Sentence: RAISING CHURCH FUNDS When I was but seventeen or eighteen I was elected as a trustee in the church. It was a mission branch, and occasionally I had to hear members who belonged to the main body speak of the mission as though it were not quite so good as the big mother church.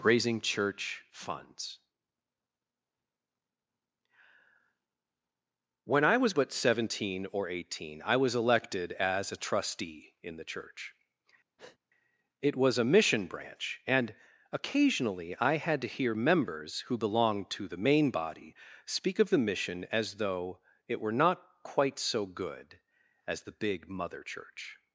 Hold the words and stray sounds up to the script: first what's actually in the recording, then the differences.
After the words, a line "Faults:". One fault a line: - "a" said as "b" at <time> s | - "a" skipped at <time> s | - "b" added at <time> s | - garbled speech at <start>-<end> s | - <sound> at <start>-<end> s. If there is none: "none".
RAISING CHURCH FUNDS When I was but seventeen or eighteen I was elected as a trustee in the church. It was a mission branch, and occasionally I had to hear members who belonged to the main body speak of the mission as though it were not quite so good as the big mother church.
Faults:
- breath at 11.6-11.8 s